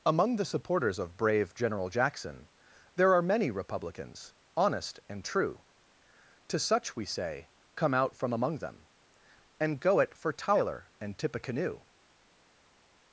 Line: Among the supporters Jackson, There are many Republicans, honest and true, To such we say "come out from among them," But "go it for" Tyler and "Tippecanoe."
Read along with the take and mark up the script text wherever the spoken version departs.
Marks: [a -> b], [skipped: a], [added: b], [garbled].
Among the supporters [added: of brave General] Jackson, There are many Republicans, honest and true, To such we say "come out from among them," [But -> And] "go it for" Tyler and "Tippecanoe."